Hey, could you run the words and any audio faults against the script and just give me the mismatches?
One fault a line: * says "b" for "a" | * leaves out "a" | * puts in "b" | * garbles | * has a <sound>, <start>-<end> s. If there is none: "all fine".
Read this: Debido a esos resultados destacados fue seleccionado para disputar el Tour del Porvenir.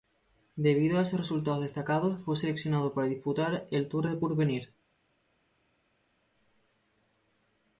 all fine